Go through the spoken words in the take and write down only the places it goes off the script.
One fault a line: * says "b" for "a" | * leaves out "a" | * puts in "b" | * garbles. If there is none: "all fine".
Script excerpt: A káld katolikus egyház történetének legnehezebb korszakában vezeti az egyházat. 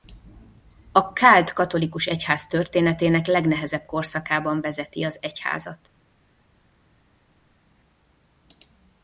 all fine